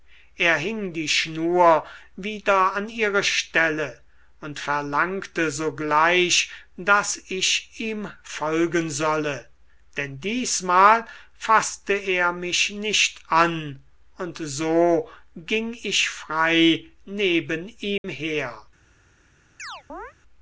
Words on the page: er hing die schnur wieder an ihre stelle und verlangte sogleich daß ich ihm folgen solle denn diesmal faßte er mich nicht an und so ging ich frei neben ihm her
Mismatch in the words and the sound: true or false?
true